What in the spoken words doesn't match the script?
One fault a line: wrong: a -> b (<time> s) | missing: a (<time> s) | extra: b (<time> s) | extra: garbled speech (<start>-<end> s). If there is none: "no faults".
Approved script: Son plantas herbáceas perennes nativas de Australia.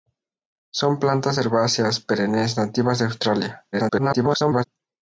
extra: garbled speech (3.7-4.6 s)